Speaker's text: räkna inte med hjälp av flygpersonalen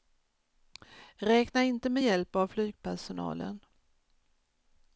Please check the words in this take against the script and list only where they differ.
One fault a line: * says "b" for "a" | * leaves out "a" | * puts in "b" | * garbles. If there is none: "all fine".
all fine